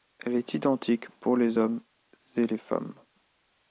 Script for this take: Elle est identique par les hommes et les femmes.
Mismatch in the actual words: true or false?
true